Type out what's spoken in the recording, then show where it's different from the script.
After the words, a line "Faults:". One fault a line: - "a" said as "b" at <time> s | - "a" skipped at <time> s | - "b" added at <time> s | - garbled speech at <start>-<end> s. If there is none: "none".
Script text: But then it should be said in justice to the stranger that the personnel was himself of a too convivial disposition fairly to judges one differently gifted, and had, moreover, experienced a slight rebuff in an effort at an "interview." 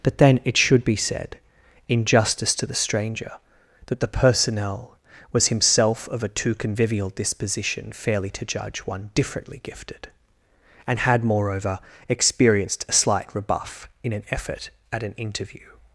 But then it should be said in justice to the stranger that the personnel was himself of a too convivial disposition fairly to judge one differently gifted, and had, moreover, experienced a slight rebuff in an effort at an "interview."
Faults:
- "judges" said as "judge" at 8.4 s